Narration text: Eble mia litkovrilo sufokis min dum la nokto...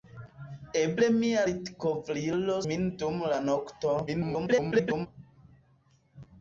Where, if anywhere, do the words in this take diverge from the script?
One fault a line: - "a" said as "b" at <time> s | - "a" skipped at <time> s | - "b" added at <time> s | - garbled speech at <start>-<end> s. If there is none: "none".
- "sufokis" skipped at 2.6 s
- garbled speech at 4.1-5.1 s